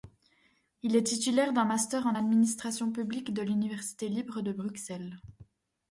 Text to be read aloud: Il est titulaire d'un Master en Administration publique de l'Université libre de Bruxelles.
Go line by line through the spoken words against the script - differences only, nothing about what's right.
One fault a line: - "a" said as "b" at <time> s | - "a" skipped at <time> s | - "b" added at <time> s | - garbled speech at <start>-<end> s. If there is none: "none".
none